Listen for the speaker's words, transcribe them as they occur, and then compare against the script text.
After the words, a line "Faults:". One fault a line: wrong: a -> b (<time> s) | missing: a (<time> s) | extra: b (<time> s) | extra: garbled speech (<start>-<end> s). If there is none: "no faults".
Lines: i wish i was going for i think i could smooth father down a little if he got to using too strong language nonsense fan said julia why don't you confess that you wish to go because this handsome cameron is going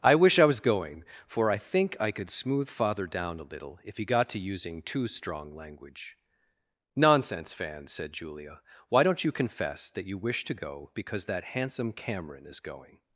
i wish i was going for i think i could smooth father down a little if he got to using too strong language nonsense fan said julia why don't you confess that you wish to go because that handsome cameron is going
Faults:
wrong: this -> that (11.2 s)